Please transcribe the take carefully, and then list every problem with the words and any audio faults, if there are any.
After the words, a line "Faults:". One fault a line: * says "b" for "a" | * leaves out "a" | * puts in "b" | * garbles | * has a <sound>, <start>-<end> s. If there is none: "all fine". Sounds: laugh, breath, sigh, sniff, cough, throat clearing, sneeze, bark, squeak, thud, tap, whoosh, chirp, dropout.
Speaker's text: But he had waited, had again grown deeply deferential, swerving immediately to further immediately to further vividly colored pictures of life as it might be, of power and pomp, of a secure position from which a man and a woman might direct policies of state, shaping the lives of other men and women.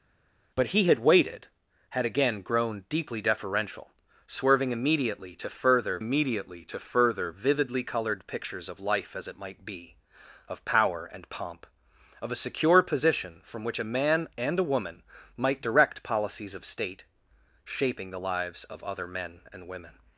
But he had waited, had again grown deeply deferential, swerving immediately to further immediately to further vividly colored pictures of life as it might be, of power and pomp, of a secure position from which a man and a woman might direct policies of state, shaping the lives of other men and women.
Faults:
all fine